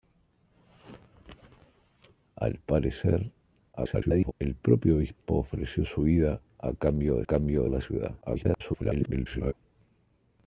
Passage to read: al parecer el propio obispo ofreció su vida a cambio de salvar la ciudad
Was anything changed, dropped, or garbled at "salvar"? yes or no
yes